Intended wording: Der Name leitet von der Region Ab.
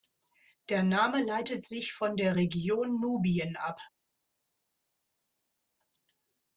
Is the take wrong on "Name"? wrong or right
right